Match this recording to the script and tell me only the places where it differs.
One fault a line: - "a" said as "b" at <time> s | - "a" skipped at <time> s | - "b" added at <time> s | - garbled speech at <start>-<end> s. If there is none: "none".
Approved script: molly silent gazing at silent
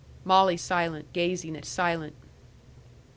none